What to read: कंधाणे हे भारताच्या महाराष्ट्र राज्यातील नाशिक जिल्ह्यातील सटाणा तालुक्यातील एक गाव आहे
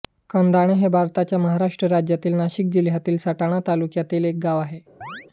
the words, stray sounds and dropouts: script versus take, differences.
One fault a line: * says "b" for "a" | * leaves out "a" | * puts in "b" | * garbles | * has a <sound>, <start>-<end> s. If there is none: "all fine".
* has a chirp, 5.0-5.3 s